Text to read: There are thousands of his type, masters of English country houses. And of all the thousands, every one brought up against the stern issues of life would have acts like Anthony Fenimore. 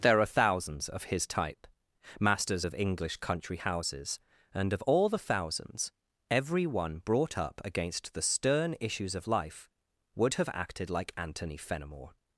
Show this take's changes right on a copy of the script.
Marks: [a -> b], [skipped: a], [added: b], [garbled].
There are thousands of his type, masters of English country houses. And of all the thousands, every one brought up against the stern issues of life would have [acts -> acted] like Anthony Fenimore.